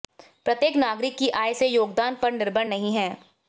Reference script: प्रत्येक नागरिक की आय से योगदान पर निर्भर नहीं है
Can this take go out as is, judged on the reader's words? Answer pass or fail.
pass